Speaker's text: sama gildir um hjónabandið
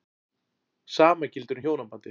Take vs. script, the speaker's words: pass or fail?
pass